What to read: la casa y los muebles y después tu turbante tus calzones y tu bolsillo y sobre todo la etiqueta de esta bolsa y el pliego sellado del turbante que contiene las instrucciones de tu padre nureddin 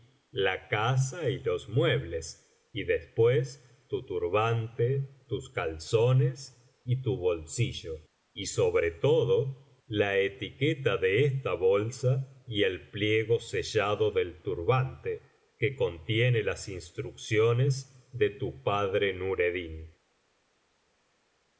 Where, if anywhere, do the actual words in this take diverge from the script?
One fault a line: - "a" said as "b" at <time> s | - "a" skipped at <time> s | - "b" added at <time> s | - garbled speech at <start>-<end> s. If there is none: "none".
none